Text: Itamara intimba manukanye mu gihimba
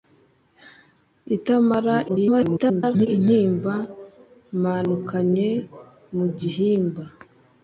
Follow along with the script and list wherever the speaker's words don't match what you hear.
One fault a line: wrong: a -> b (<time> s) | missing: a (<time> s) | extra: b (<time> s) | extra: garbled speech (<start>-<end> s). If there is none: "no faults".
extra: garbled speech (2.1-3.1 s)